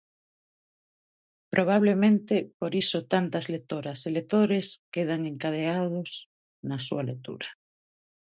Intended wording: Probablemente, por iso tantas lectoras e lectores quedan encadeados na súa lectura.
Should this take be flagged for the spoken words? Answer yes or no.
no